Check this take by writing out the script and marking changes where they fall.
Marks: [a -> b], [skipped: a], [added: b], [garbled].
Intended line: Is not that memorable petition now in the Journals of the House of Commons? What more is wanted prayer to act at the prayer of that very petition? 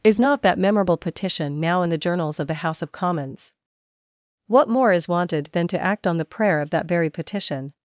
Is not that memorable petition now in the Journals of the House of Commons? What more is wanted [prayer -> than] to act [at -> on] the prayer of that very petition?